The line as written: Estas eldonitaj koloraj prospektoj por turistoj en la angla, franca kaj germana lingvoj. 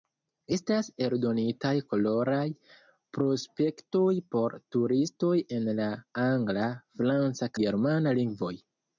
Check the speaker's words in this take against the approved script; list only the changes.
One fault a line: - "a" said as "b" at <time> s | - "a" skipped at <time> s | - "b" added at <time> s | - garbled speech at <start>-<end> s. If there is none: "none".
- "kaj" skipped at 7.5 s